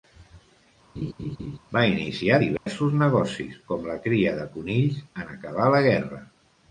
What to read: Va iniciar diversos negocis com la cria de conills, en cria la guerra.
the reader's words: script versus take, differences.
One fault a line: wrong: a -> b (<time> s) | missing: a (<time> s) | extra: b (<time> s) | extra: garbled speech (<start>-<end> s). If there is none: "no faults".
wrong: cria -> acabar (5.4 s)